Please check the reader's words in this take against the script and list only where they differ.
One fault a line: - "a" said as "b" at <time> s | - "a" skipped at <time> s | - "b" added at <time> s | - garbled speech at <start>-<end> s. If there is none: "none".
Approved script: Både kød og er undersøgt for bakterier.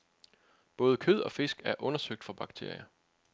- "fisk" added at 1.3 s